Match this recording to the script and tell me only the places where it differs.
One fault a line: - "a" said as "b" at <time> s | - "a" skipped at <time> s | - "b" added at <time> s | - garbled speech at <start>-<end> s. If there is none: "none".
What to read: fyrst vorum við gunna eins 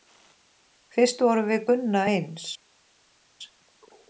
none